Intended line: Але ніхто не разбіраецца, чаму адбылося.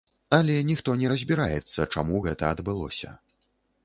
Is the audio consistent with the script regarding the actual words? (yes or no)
no